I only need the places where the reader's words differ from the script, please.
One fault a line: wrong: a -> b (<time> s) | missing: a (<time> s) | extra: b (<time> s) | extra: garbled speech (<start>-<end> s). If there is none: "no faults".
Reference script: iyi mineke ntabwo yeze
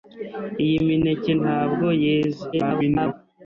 extra: garbled speech (2.5-3.1 s)